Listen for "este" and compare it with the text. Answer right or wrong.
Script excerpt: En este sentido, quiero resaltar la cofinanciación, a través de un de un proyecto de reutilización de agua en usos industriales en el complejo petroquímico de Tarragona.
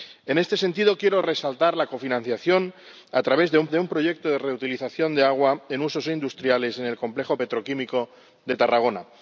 right